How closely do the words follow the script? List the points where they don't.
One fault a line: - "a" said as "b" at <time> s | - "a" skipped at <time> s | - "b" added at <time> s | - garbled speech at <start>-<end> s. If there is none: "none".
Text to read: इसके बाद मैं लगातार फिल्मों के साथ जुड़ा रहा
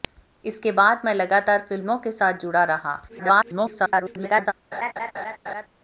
- garbled speech at 3.1-4.5 s